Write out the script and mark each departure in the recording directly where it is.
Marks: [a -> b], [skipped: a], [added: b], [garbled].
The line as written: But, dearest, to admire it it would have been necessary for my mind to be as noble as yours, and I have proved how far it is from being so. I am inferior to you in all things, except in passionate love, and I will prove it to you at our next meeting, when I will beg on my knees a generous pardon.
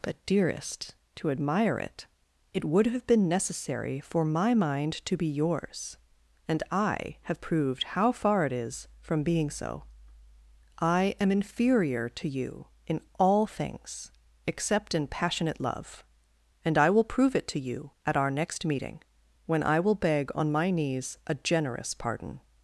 But, dearest, to admire it it would have been necessary for my mind to be [skipped: as noble as] yours, and I have proved how far it is from being so. I am inferior to you in all things, except in passionate love, and I will prove it to you at our next meeting, when I will beg on my knees a generous pardon.